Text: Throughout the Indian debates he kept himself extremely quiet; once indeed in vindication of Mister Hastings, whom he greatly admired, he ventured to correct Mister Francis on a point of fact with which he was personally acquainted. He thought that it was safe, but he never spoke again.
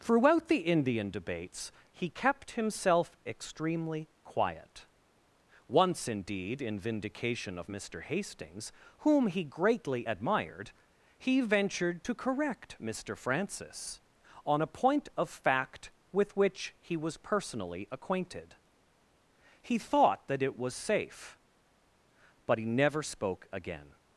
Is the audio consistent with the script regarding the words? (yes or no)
yes